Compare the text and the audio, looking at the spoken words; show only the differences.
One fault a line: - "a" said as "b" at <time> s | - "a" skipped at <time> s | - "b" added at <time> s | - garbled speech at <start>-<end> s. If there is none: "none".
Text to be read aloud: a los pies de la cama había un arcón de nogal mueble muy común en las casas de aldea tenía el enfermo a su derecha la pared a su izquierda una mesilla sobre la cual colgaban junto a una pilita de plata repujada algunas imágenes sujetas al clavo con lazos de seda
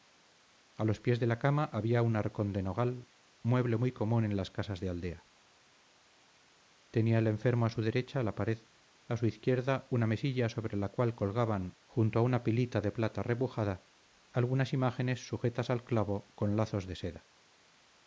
none